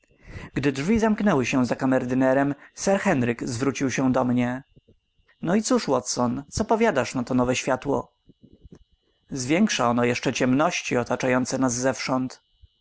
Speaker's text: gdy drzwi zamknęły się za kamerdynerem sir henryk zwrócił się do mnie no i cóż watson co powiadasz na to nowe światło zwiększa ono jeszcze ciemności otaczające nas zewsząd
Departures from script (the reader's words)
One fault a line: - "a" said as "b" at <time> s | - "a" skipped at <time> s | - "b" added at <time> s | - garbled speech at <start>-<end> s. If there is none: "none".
none